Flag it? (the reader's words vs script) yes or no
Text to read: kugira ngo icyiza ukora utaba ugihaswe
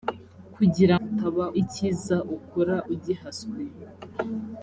yes